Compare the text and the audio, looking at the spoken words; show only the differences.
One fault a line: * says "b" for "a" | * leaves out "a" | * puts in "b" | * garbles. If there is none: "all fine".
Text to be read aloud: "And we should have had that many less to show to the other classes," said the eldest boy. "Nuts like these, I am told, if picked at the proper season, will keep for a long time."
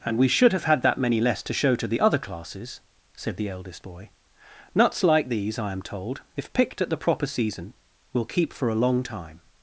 all fine